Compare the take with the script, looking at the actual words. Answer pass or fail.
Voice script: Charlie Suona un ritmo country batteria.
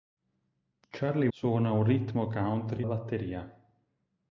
pass